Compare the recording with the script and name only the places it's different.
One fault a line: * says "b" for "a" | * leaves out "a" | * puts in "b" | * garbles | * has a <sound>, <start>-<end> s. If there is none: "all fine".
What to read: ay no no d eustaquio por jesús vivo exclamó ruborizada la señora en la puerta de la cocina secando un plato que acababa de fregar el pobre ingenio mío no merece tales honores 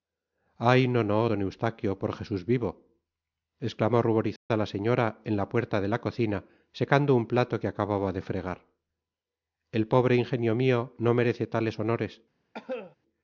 * has a dropout, 4.4-4.5 s
* has a cough, 12.5-13.0 s